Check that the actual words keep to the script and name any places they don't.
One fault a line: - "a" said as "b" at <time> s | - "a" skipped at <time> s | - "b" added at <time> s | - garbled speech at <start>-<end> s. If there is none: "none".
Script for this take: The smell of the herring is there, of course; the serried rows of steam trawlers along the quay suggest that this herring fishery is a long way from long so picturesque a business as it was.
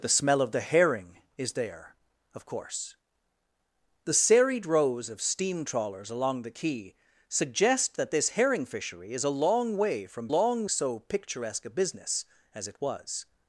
none